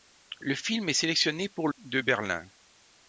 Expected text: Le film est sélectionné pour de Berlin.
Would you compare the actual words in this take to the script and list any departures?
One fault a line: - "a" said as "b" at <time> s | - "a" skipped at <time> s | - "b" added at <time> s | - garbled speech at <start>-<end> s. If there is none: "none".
none